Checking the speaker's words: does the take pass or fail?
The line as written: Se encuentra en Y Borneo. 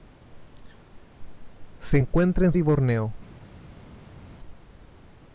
pass